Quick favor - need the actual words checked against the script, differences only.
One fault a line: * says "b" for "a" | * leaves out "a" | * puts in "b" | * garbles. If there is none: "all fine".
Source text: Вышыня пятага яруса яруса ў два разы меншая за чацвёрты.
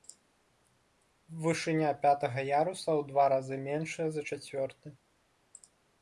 * leaves out "яруса"